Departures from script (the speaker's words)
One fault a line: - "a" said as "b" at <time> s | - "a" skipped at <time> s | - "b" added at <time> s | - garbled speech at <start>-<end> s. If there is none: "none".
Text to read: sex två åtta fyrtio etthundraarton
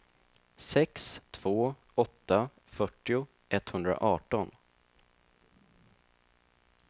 none